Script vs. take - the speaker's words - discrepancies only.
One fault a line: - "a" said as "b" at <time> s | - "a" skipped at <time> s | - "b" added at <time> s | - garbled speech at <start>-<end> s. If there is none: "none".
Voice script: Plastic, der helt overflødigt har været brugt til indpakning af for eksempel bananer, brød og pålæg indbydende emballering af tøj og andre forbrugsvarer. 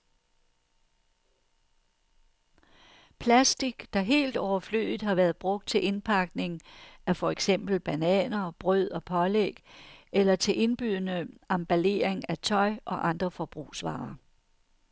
- "eller til" added at 10.1 s